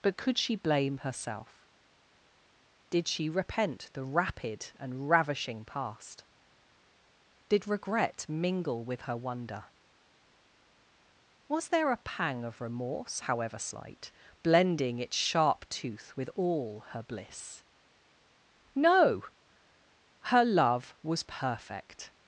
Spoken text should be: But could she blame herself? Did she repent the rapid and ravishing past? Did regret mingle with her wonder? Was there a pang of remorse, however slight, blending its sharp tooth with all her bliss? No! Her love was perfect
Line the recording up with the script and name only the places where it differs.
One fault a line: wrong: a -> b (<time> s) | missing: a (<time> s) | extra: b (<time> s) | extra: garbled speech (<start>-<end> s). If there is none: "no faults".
no faults